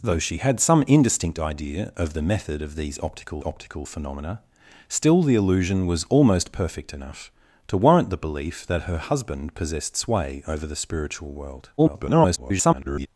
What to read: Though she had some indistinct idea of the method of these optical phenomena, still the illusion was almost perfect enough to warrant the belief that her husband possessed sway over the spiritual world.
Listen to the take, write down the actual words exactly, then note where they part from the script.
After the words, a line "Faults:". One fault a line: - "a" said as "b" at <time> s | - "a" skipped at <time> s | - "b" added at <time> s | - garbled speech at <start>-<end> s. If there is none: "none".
Though she had some indistinct idea of the method of these optical optical phenomena, still the illusion was almost perfect enough to warrant the belief that her husband possessed sway over the spiritual world. [garbled]
Faults:
- "optical" added at 3.4 s
- garbled speech at 11.8-13.1 s